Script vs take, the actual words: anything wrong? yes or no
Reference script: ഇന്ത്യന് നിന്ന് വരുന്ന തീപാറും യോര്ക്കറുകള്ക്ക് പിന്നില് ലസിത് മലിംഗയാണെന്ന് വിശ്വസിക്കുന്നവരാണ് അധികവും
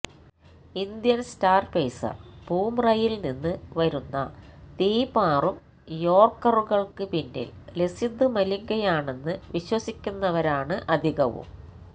yes